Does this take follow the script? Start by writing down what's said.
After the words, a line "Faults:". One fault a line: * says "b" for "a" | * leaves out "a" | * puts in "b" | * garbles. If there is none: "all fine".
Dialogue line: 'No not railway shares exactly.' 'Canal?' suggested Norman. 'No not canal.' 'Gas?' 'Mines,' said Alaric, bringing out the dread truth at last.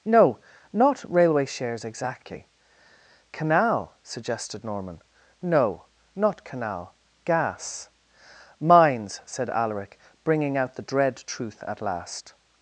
'No not railway shares exactly.' 'Canal?' suggested Norman. 'No not canal.' 'Gas?' 'Mines,' said Alaric, bringing out the dread truth at last.
Faults:
all fine